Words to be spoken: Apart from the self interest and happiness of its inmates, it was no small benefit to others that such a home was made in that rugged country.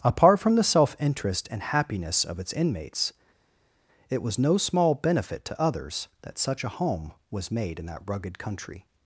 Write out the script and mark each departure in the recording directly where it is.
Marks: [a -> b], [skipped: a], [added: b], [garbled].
Apart from the self interest and happiness of its inmates, it was no small benefit to others that such a home was made in that rugged country.